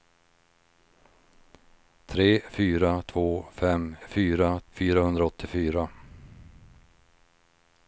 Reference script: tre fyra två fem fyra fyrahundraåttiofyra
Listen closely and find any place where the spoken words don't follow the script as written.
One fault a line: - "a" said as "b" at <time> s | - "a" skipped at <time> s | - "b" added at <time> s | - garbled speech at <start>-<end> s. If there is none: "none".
none